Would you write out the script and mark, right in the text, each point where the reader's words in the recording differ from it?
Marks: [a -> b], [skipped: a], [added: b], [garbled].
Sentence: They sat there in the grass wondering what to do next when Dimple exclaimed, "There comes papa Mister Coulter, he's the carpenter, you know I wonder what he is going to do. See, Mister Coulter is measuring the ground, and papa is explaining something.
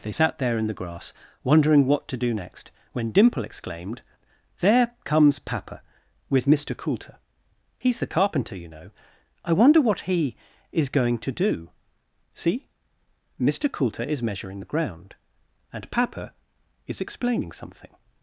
They sat there in the grass wondering what to do next when Dimple exclaimed, "There comes papa [added: with] Mister Coulter, he's the carpenter, you know I wonder what he is going to do. See, Mister Coulter is measuring the ground, and papa is explaining something.